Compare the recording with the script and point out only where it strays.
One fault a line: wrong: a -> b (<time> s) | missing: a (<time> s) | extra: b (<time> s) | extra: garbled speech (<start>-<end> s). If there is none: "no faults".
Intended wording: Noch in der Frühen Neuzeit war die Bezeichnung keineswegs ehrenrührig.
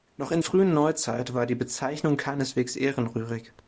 missing: der (0.4 s)